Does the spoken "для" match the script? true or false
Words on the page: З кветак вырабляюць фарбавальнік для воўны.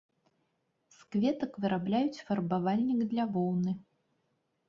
true